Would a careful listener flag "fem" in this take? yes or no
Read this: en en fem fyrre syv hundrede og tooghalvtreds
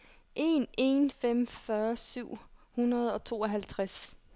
no